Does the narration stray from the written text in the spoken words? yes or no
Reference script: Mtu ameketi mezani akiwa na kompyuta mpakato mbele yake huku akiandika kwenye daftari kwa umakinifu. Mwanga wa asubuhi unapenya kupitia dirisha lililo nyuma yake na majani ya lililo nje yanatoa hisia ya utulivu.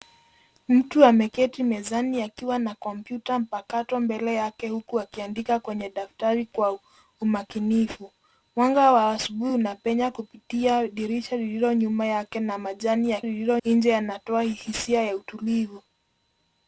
no